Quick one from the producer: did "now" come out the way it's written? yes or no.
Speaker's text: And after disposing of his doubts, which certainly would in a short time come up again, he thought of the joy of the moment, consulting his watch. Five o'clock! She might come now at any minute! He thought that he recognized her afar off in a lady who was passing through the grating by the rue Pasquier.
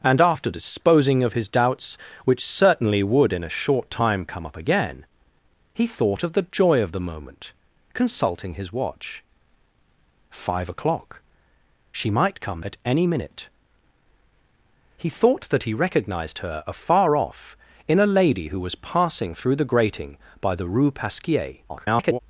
no